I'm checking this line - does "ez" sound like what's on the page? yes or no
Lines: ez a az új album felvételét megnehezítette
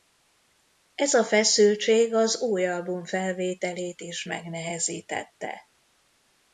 yes